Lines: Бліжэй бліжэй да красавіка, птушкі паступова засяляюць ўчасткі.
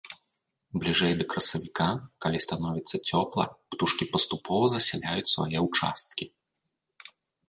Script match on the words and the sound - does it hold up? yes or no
no